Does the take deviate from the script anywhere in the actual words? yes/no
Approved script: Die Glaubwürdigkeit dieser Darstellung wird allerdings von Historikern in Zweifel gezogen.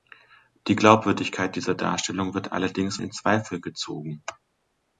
yes